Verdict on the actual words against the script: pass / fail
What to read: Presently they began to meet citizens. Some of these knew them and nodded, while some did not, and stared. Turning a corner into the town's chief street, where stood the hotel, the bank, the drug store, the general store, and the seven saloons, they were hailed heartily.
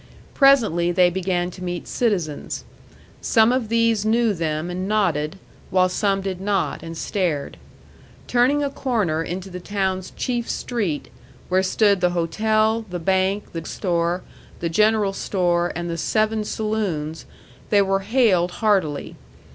fail